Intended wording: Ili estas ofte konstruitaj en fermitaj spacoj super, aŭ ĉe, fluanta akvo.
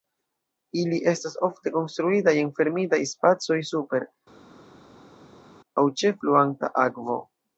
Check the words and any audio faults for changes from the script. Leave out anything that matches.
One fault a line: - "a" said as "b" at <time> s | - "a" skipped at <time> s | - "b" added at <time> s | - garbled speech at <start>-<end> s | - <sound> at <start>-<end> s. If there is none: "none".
none